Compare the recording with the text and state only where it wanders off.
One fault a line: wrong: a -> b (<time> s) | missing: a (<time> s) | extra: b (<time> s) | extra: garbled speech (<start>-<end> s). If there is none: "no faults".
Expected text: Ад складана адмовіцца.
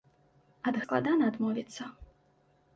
no faults